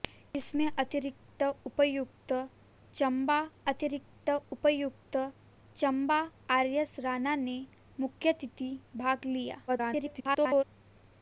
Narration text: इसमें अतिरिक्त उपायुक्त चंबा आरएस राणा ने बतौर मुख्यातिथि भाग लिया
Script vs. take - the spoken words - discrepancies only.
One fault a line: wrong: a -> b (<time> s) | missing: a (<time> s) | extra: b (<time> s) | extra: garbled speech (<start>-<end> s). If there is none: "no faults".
extra: अतिरिक्त उपायुक्त चंबा (3.7 s)
missing: बतौर (7.6 s)
extra: garbled speech (9.7-10.6 s)